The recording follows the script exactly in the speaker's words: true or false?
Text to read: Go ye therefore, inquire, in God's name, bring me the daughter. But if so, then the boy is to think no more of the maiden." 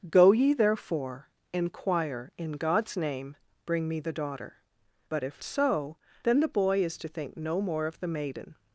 true